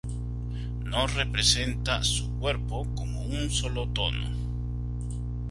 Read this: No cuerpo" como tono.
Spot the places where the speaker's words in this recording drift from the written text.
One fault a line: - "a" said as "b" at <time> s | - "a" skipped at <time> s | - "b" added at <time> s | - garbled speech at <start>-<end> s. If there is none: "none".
- "representa su" added at 1.1 s
- "un solo" added at 3.2 s